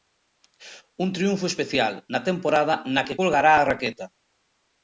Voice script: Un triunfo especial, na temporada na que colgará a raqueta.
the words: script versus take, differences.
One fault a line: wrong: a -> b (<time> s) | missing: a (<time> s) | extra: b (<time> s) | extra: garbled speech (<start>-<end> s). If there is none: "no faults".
no faults